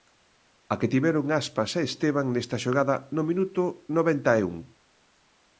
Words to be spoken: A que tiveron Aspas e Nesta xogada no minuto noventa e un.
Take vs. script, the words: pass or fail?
fail